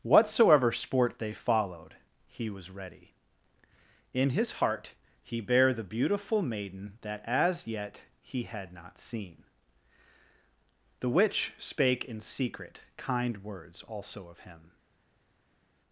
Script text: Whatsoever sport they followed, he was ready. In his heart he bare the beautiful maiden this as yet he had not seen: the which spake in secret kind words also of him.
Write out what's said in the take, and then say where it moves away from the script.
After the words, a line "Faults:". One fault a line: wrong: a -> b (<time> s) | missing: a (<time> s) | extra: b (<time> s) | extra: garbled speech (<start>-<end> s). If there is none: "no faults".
Whatsoever sport they followed, he was ready. In his heart he bare the beautiful maiden that as yet he had not seen: the which spake in secret kind words also of him.
Faults:
wrong: this -> that (7.0 s)